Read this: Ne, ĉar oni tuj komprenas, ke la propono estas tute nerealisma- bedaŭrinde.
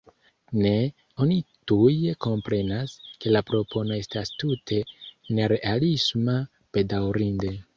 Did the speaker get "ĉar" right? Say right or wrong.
wrong